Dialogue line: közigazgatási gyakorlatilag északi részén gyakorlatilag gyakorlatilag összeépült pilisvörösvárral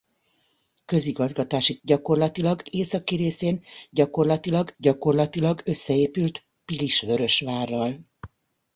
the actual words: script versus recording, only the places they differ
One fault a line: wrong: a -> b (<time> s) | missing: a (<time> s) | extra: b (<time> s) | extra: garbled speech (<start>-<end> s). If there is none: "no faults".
no faults